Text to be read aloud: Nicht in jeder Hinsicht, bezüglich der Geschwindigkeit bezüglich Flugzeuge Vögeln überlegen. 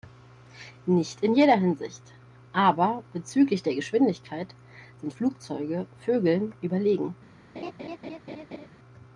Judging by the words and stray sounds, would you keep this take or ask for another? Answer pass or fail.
fail